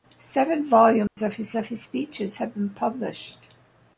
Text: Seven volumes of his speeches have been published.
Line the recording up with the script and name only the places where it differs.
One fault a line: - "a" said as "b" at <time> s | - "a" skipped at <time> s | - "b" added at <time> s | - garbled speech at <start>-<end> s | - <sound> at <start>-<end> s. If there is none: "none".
- dropout at 1.1-1.2 s
- "of his" added at 1.5 s